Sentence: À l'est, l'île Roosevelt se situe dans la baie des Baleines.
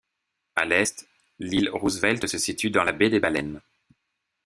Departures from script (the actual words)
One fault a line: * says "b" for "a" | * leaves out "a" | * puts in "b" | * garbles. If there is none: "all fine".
all fine